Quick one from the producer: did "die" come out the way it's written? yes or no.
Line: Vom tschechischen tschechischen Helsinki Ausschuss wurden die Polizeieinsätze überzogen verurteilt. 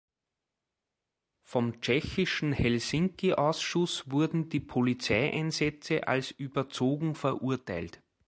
yes